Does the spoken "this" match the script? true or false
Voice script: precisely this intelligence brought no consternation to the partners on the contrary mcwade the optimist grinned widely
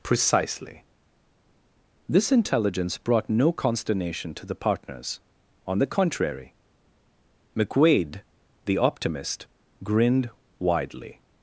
true